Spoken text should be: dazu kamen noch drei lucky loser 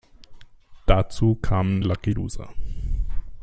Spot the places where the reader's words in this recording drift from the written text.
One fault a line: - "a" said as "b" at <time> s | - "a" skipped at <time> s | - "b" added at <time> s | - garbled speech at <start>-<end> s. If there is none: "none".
- "noch drei" skipped at 1.8 s